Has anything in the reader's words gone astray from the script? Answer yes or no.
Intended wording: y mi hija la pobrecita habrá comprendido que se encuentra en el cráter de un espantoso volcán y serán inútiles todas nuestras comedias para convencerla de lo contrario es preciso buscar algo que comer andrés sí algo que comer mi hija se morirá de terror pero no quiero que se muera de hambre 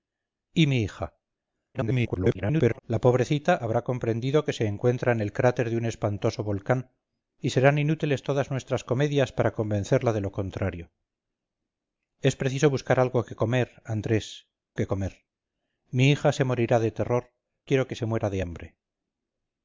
yes